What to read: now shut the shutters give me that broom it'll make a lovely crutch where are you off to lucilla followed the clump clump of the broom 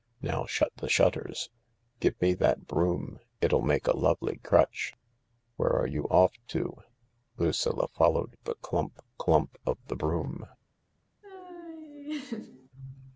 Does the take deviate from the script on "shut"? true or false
false